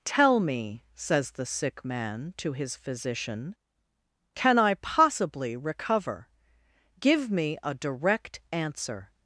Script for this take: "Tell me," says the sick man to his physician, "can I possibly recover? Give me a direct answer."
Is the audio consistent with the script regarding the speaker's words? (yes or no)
yes